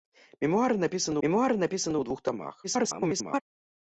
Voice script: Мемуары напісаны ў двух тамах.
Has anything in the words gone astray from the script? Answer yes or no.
yes